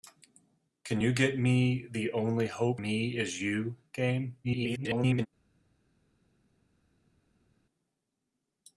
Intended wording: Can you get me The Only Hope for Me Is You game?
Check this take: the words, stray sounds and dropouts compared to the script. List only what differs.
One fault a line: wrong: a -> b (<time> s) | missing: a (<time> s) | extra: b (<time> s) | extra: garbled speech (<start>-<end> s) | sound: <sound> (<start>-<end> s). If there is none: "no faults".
missing: for (2.8 s)
extra: garbled speech (4.4-5.3 s)